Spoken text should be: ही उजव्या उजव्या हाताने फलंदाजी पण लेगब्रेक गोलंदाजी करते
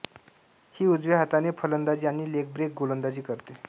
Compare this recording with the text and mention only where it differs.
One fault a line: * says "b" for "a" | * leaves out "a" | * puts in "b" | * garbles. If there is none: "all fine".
* leaves out "उजव्या"
* says "आणि" for "पण"